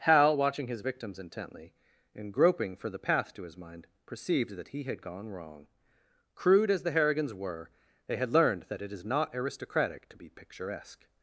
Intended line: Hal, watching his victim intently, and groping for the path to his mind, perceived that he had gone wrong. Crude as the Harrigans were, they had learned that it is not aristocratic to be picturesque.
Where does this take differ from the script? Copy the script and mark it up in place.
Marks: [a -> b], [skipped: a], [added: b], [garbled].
Hal, watching his [victim -> victims] intently, and groping for the path to his mind, perceived that he had gone wrong. Crude as the Harrigans were, they had learned that it is not aristocratic to be picturesque.